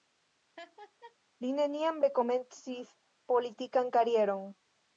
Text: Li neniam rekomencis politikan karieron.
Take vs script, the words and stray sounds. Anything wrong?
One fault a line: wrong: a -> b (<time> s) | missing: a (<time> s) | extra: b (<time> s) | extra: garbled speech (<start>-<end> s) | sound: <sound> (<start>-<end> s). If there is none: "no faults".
sound: laugh (0.6-1.2 s)